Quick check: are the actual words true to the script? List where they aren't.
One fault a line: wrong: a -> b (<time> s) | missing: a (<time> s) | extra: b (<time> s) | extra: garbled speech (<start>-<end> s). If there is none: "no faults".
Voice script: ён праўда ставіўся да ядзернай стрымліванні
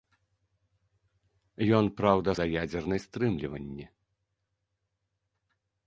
missing: ставіўся (2.3 s)